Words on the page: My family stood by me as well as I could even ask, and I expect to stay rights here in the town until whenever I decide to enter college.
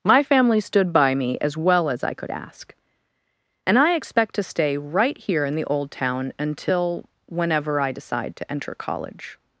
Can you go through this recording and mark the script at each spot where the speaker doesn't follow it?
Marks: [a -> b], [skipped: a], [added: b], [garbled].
My family stood by me as well as I could [skipped: even] ask, and I expect to stay [rights -> right] here in the [added: old] town until whenever I decide to enter college.